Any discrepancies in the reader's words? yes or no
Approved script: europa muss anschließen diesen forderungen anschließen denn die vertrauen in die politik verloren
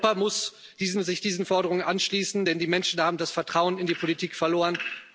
yes